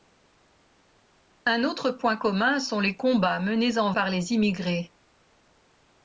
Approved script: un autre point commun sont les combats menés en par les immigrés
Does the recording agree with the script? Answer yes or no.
yes